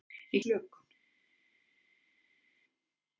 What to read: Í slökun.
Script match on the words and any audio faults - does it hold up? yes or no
yes